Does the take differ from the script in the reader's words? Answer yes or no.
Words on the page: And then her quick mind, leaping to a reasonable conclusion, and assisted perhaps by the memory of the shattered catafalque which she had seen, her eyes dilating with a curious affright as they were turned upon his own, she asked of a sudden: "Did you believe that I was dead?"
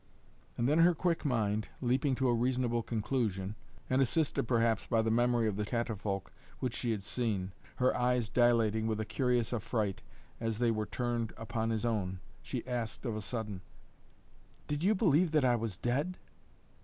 yes